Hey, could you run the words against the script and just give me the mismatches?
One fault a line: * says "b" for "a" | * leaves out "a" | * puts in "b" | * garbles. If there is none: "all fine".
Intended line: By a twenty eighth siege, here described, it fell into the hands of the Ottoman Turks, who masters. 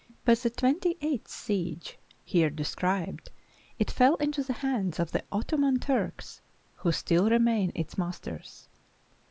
* says "the" for "a"
* puts in "still remain its"